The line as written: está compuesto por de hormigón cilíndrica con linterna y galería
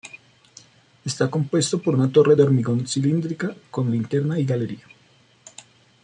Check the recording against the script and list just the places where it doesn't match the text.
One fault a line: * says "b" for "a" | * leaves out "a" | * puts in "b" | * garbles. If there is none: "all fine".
* puts in "una torre"